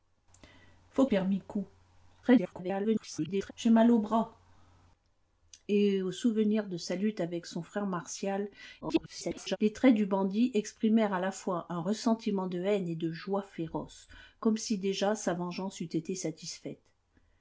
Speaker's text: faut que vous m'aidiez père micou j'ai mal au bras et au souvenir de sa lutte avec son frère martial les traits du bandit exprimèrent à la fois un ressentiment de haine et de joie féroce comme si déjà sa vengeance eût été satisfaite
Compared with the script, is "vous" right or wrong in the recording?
wrong